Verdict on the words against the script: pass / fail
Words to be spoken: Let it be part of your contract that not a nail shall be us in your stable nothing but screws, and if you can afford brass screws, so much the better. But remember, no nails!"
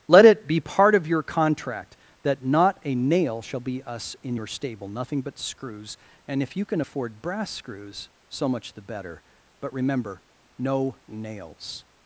pass